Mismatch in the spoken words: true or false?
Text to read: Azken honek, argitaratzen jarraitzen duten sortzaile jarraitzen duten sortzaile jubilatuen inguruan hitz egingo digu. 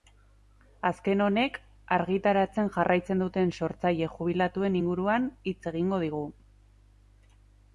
true